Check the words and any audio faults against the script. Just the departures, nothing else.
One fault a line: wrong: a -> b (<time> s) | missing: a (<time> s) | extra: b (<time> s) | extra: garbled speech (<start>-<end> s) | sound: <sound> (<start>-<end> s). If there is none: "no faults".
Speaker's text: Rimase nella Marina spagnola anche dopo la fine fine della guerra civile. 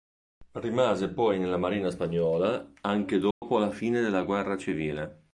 extra: poi (1.1 s)
sound: dropout (3.3-3.4 s)
missing: fine (4.0 s)